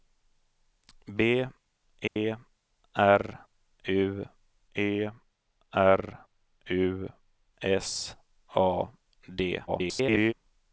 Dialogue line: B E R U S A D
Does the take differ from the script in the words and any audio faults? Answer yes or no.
yes